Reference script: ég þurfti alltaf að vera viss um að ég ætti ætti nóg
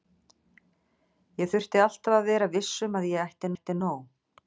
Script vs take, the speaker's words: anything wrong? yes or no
no